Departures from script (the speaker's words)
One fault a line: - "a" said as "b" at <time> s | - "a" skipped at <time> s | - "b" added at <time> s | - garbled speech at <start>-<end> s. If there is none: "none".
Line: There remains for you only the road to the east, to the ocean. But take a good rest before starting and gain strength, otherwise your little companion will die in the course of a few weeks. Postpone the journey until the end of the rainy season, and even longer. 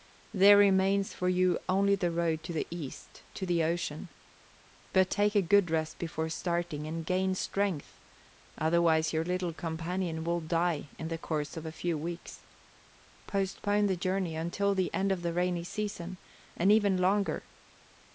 none